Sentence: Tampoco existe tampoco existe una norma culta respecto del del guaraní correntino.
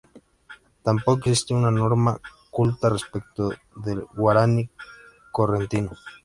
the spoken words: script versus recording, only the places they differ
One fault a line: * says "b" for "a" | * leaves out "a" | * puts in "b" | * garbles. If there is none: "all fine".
* leaves out "tampoco existe"
* leaves out "del"